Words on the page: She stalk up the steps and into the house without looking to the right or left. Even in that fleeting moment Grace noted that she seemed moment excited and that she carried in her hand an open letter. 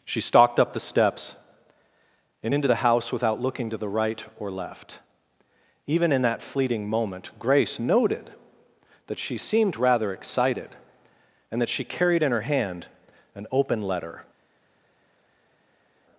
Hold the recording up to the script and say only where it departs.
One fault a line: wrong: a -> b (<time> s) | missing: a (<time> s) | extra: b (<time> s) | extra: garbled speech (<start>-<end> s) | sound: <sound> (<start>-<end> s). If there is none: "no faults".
wrong: stalk -> stalked (0.2 s)
wrong: moment -> rather (9.8 s)